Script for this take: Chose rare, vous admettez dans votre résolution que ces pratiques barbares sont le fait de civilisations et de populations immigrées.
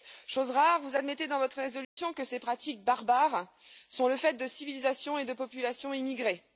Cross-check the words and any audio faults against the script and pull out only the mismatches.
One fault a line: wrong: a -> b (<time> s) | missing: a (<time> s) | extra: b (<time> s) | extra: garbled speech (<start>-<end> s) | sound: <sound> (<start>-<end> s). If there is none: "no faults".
sound: dropout (1.8-2.0 s)